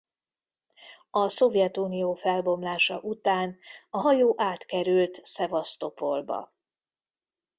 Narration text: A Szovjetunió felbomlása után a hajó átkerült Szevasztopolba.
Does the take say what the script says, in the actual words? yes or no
yes